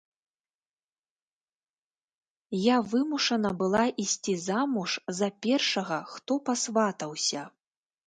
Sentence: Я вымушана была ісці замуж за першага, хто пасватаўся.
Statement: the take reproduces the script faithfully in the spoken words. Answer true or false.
true